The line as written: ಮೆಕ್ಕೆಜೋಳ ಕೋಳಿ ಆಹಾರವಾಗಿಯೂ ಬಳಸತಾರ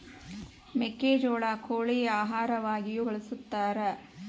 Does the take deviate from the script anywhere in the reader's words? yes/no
no